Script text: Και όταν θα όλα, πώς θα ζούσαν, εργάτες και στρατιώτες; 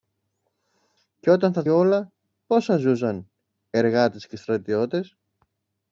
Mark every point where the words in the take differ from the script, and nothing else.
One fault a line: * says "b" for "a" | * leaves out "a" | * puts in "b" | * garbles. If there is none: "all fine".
all fine